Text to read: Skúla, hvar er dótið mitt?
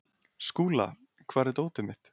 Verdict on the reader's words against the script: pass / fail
pass